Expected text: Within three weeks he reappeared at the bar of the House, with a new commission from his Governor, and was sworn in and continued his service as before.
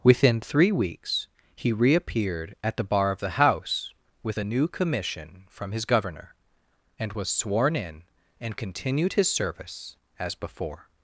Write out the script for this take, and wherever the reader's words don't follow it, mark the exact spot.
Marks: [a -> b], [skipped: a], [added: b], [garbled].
Within three weeks he reappeared at the bar of the House, with a new commission from his Governor, and was sworn in and continued his service as before.